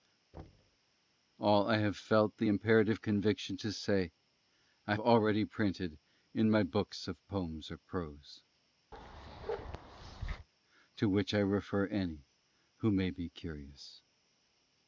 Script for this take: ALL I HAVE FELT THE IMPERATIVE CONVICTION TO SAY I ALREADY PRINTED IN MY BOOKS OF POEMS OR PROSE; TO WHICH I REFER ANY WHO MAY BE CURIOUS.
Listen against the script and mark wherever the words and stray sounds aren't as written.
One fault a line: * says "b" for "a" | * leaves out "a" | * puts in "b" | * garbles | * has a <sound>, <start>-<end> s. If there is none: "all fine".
* has a thud, 0.3-0.8 s
* has a bark, 8.9-10.5 s